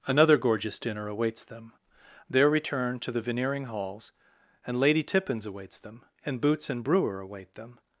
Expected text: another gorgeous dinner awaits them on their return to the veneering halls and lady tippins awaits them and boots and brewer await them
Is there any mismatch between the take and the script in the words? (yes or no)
yes